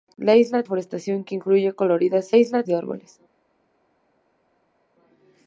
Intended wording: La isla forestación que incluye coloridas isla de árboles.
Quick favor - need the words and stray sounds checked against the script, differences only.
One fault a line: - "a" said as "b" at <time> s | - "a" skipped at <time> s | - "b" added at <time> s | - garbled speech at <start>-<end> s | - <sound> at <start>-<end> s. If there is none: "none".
none